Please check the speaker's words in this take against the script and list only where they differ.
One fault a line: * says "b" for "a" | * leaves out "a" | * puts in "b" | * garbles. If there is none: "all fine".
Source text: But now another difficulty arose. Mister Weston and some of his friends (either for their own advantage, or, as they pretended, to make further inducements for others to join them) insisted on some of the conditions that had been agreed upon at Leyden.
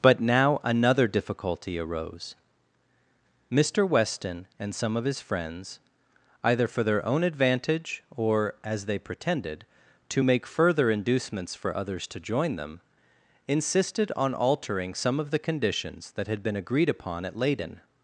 * puts in "altering"